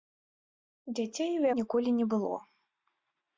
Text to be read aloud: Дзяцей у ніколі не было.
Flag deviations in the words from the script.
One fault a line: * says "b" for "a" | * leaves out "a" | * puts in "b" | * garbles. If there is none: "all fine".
all fine